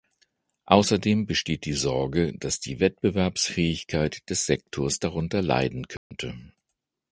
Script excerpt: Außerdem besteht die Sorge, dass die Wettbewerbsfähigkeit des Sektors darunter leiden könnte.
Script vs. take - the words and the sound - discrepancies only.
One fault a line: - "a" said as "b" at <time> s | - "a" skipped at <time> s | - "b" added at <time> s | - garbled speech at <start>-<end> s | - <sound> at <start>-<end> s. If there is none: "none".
- dropout at 6.0-6.1 s